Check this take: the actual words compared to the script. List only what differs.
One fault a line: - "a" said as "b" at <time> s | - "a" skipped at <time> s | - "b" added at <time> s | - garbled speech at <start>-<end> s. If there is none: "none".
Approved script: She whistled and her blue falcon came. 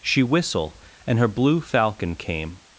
- "whistled" said as "whistle" at 0.2 s